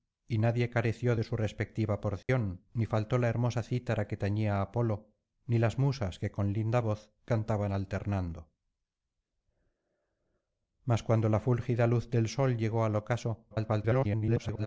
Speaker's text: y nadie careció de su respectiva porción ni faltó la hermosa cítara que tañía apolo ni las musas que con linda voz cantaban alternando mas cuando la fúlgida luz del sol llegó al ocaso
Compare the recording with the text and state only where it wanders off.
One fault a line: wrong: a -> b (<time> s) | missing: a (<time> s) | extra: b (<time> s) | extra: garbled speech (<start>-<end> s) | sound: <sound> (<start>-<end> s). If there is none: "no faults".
sound: dropout (2.2-2.3 s)
extra: garbled speech (13.5-14.7 s)